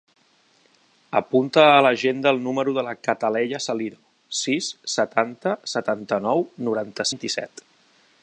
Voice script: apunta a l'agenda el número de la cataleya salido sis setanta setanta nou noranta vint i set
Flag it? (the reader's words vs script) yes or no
no